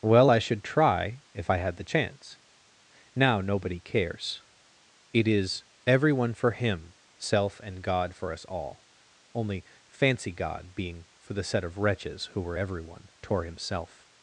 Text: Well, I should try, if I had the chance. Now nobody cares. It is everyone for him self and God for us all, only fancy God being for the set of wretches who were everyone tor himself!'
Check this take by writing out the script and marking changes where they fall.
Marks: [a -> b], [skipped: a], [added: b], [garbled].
Well, I should try, if I had the chance. Now nobody cares. It is everyone for him self and God for us all, only fancy God being for the set of wretches who were everyone tor himself!'